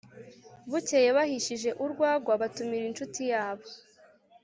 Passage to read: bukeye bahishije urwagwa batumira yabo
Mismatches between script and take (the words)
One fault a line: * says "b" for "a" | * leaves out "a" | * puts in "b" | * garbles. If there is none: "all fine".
* puts in "inshuti"